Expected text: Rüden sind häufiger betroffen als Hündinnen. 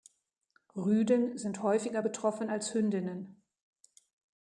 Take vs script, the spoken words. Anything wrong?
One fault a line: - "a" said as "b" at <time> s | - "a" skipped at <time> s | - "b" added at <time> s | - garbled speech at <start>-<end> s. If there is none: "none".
none